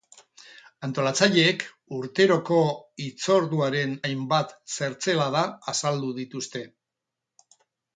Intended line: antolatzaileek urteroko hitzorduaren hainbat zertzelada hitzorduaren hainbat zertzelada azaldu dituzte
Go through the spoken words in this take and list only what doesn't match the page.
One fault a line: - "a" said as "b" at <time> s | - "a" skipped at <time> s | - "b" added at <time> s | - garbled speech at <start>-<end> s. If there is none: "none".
- "hitzorduaren hainbat zertzelada" skipped at 5.5 s